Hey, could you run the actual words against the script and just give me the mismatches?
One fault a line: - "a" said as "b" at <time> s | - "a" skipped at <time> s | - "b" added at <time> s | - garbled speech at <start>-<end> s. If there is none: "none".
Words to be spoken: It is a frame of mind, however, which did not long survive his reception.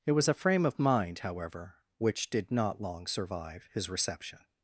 - "is" said as "was" at 0.1 s